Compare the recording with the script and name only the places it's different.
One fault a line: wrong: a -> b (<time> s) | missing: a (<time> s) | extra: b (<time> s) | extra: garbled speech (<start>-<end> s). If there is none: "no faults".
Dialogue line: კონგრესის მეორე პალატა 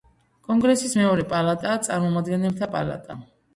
extra: პალატაა წარმომადგენელთა (1.3 s)